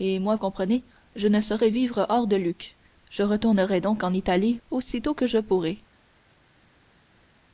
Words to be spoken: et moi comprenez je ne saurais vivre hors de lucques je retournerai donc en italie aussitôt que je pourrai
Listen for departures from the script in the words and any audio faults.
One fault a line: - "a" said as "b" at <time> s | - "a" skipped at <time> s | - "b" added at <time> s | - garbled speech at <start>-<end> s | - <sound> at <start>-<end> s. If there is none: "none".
none